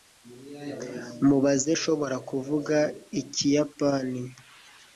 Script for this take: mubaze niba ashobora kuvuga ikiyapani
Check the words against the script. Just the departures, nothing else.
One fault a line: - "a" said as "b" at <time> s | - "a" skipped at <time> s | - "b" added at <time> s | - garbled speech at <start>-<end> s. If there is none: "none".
- "niba" skipped at 1.7 s